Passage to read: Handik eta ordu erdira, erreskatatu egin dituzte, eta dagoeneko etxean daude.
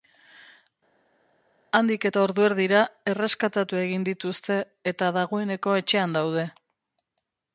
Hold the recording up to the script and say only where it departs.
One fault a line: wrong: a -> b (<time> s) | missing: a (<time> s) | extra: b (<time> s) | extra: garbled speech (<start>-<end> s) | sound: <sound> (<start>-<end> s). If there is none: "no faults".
no faults